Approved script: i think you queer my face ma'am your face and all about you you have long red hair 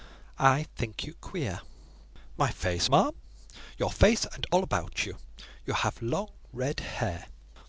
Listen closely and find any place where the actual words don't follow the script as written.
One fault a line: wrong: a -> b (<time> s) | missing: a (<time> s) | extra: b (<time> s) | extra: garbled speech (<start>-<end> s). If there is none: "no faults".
no faults